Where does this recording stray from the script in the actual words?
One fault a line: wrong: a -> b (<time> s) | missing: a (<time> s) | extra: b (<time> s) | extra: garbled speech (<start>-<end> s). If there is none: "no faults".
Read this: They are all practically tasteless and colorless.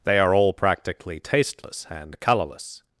no faults